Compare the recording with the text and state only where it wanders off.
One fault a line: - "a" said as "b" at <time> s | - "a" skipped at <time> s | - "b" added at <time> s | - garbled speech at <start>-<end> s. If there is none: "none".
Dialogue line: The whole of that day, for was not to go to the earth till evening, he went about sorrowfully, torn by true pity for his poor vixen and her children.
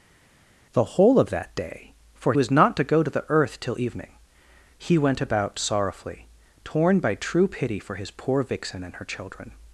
none